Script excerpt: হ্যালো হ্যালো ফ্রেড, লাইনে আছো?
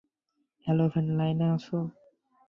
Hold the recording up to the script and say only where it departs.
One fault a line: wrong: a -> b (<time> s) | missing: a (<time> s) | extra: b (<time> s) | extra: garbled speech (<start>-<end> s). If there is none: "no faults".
missing: হ্যালো (0.8 s)